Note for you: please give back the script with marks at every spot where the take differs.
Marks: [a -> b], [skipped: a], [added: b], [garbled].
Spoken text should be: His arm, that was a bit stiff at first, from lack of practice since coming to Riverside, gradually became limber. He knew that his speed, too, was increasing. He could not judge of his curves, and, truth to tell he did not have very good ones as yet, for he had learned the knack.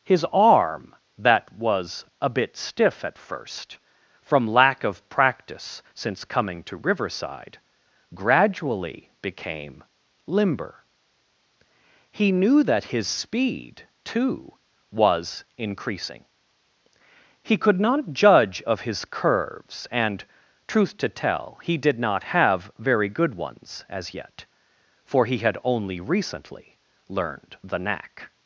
His arm, that was a bit stiff at first, from lack of practice since coming to Riverside, gradually became limber. He knew that his speed, too, was increasing. He could not judge of his curves, and, truth to tell he did not have very good ones as yet, for he had [added: only recently] learned the knack.